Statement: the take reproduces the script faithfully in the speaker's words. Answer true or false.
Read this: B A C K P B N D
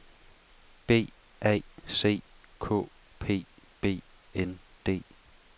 true